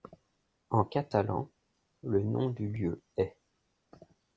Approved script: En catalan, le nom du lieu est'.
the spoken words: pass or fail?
pass